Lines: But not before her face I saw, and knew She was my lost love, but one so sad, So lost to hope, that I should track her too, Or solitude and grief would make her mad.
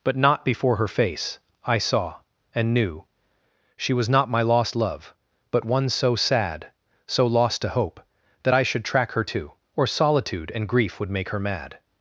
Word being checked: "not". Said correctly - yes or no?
yes